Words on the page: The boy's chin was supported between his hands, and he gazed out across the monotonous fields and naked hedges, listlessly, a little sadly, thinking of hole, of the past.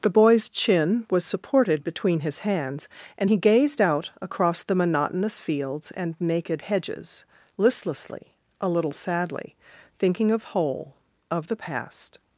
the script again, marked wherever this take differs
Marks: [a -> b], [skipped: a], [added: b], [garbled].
The boy's chin was supported between his hands, and he gazed out across the monotonous fields and naked hedges, listlessly, a little sadly, thinking of hole, of the past.